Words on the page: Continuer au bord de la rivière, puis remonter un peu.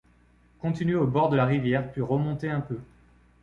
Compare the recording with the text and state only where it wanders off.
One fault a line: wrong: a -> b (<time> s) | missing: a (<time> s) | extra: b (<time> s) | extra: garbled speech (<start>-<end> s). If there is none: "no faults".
no faults